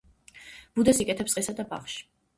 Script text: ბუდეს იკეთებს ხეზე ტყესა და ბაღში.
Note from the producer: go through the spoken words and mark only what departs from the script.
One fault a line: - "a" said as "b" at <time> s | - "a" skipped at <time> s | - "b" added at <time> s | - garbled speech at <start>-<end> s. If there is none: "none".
- "ხეზე" skipped at 1.4 s